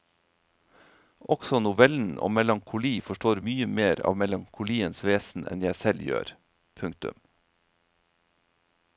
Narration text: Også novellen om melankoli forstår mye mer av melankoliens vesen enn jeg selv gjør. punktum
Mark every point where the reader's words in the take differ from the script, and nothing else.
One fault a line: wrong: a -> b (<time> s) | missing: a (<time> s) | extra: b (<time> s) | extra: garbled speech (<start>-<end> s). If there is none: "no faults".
no faults